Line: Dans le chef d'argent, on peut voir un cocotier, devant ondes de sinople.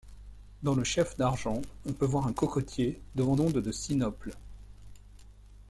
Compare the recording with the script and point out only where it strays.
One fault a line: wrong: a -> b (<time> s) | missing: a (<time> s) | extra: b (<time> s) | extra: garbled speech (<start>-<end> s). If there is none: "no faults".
no faults